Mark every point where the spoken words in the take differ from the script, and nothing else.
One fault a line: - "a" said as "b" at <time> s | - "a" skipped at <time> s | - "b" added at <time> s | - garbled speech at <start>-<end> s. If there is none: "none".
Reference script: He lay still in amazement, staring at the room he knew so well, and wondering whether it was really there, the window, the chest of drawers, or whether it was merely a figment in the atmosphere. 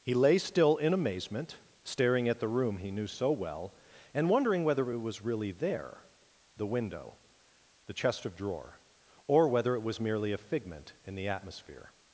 - "drawers" said as "drawer" at 8.4 s